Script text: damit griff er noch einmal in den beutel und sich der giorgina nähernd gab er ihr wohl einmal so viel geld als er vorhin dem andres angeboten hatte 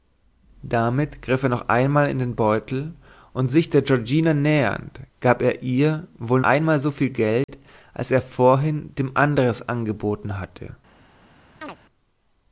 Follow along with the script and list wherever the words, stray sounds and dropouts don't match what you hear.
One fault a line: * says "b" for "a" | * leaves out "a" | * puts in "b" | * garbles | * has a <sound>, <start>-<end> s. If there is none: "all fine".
* has a dropout, 7.4-7.5 s
* has a chirp, 11.6-11.8 s